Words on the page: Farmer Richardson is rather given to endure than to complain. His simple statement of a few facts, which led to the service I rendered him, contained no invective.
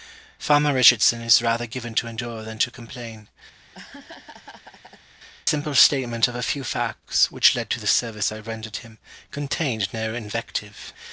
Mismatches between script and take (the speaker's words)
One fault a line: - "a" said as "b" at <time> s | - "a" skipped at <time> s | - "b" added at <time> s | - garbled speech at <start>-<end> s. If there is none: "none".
- "His" skipped at 3.3 s